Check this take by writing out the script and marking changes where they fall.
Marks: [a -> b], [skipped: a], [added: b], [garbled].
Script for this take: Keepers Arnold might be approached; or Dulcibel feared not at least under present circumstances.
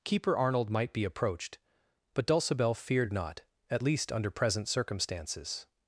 [Keepers -> Keeper] Arnold might be approached; [or -> but] Dulcibel feared not at least under present circumstances.